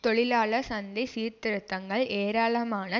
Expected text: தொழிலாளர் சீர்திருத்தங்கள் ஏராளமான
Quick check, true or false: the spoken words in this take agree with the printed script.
false